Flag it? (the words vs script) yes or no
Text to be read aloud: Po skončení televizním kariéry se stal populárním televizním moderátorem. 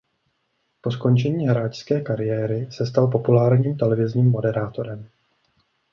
yes